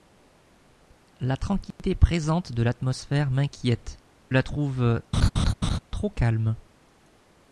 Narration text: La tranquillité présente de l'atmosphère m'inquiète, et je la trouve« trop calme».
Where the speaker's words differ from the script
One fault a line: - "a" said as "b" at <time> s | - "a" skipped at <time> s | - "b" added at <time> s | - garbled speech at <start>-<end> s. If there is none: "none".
- "et je" skipped at 4.0 s